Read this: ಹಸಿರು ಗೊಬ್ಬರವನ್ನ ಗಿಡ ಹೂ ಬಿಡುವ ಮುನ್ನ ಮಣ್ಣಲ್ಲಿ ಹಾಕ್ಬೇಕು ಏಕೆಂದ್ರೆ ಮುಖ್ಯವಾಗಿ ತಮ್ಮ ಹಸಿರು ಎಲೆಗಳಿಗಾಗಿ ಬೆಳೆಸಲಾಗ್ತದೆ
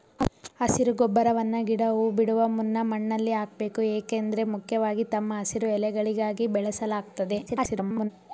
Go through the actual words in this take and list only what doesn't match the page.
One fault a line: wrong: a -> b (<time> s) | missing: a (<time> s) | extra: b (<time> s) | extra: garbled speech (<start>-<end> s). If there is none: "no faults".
extra: garbled speech (7.5-8.1 s)